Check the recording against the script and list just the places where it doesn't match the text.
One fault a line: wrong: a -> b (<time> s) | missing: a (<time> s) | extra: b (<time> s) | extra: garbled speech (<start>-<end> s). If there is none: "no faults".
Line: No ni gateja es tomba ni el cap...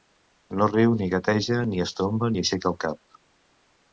extra: riu (0.7 s)
extra: ni (1.7 s)
extra: aixeca (2.4 s)